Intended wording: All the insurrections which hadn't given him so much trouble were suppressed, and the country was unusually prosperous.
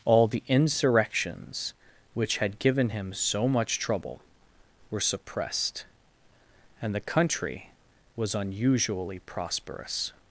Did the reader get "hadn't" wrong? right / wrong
wrong